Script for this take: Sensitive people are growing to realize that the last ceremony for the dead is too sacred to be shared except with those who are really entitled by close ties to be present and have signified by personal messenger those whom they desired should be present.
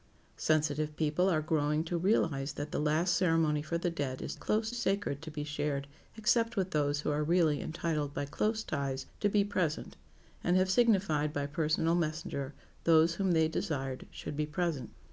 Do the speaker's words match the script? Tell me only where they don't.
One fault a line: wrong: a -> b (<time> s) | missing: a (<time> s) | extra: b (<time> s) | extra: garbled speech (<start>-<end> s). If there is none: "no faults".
wrong: too -> close (4.3 s)